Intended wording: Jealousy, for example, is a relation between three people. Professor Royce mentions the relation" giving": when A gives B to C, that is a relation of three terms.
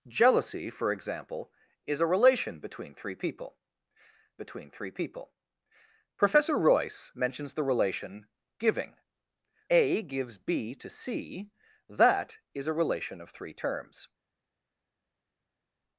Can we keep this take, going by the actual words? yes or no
no